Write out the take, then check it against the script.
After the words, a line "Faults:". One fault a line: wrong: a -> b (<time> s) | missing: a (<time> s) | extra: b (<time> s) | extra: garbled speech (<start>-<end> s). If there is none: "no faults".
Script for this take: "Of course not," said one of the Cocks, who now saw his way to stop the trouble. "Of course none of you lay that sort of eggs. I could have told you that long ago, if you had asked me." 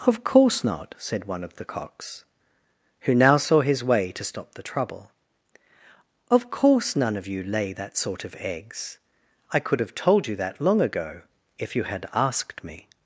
"Of course not," said one of the Cocks, who now saw his way to stop the trouble. "Of course none of you lay that sort of eggs. I could have told you that long ago, if you had asked me."
Faults:
no faults